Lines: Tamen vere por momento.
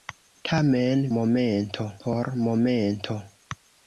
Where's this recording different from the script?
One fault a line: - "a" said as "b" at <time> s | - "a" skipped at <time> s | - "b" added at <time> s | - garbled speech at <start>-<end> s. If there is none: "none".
- "vere" said as "momento" at 1.2 s